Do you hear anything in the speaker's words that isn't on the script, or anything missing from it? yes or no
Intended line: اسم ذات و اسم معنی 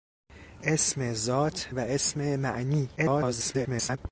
yes